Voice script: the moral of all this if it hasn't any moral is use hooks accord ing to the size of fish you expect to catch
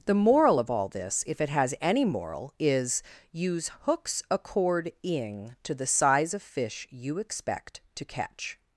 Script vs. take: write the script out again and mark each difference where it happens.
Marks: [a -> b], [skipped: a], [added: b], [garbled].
the moral of all this if it [hasn't -> has] any moral is use hooks accord ing to the size of fish you expect to catch